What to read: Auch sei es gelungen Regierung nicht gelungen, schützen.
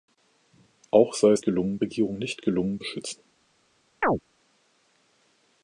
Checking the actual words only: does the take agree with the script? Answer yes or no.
yes